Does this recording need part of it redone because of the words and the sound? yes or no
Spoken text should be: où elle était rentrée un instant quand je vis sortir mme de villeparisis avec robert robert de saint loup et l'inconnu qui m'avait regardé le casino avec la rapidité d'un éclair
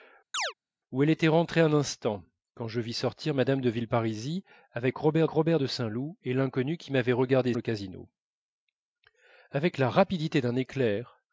yes